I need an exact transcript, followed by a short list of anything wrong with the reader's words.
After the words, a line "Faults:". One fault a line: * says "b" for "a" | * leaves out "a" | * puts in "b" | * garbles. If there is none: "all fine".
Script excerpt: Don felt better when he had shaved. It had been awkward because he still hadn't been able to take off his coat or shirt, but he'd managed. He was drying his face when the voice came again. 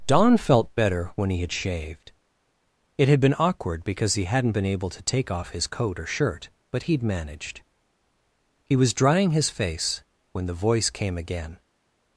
Don felt better when he had shaved. It had been awkward because he hadn't been able to take off his coat or shirt, but he'd managed. He was drying his face when the voice came again.
Faults:
* leaves out "still"